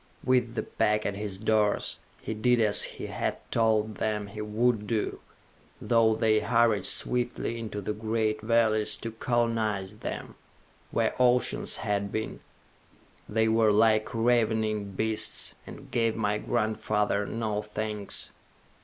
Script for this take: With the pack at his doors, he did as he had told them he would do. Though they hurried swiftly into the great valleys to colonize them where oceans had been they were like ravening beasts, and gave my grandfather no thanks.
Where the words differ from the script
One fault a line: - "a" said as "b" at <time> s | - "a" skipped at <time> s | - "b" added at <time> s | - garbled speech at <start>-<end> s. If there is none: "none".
none